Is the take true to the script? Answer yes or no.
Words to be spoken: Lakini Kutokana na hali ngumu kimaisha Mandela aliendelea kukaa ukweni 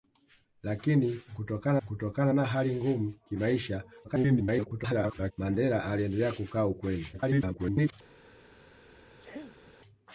no